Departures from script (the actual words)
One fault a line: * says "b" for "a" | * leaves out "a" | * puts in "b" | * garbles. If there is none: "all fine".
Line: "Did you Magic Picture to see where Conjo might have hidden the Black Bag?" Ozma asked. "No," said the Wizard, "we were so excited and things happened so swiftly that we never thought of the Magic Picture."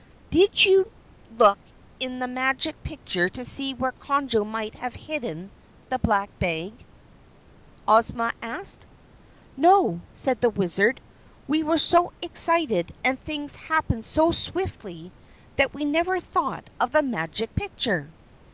* puts in "look in the"